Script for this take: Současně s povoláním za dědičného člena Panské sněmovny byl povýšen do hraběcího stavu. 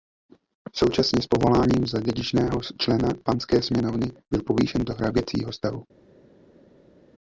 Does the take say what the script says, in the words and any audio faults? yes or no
yes